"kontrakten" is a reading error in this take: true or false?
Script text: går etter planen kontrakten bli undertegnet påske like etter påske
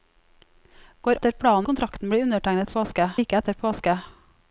false